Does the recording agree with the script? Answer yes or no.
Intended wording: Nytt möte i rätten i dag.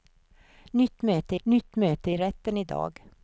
no